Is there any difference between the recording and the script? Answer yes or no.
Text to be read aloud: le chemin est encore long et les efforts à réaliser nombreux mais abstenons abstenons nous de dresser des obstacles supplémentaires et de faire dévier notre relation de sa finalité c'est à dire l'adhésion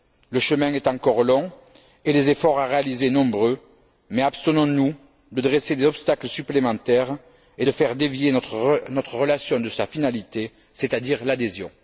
yes